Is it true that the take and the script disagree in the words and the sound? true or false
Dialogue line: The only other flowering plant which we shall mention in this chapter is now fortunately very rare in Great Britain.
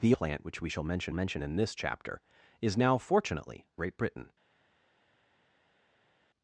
true